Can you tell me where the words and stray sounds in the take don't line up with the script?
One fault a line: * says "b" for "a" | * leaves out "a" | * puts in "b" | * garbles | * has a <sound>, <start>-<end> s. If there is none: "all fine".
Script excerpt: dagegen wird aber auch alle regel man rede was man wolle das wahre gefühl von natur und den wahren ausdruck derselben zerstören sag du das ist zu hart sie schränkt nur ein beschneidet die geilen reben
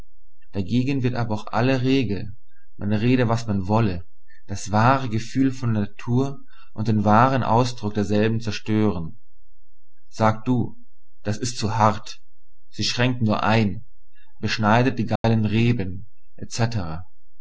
* has a dropout, 15.2-15.2 s